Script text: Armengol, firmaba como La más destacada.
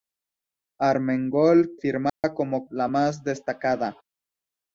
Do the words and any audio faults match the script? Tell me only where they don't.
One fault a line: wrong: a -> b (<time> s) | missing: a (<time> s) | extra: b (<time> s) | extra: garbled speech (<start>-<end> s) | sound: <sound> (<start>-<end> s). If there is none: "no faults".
sound: dropout (2.1-2.2 s)